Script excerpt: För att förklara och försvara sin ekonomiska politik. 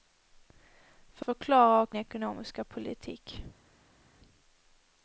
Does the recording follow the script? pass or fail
fail